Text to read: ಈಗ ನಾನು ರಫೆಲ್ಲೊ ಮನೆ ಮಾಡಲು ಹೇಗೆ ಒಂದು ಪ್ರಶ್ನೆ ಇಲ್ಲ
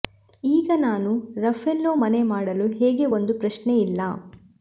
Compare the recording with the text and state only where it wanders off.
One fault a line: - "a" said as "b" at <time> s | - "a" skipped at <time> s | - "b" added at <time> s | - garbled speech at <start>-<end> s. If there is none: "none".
none